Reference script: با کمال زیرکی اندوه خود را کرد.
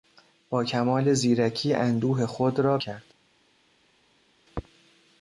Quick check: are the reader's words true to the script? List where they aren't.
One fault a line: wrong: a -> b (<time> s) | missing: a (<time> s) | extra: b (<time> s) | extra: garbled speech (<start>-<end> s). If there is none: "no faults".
no faults